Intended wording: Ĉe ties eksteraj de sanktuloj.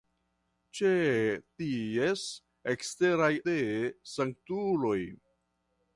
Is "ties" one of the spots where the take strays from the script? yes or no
no